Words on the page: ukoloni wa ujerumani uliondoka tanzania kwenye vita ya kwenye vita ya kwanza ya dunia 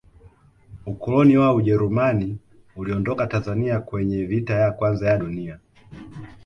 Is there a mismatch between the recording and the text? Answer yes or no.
yes